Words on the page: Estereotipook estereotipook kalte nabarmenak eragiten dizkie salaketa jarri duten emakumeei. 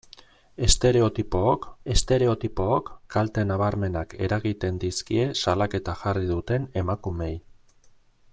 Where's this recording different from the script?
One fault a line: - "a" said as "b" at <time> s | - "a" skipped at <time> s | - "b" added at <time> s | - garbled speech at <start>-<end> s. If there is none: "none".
none